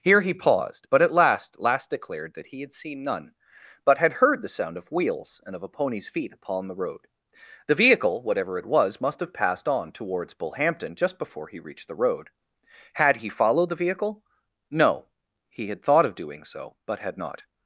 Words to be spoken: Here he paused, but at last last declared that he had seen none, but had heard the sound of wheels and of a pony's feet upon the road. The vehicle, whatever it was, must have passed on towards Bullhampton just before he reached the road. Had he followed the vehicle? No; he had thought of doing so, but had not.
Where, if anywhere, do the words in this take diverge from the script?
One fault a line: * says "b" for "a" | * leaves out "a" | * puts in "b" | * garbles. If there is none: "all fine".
all fine